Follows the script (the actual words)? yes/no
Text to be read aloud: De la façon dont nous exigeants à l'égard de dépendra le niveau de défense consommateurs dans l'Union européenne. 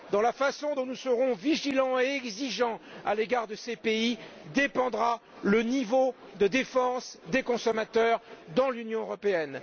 no